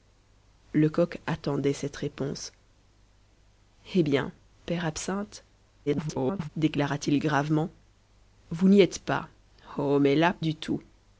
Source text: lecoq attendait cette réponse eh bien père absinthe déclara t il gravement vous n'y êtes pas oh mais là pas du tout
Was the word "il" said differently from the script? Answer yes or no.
no